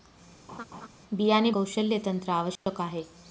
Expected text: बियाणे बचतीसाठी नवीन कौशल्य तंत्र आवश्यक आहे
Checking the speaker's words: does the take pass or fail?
fail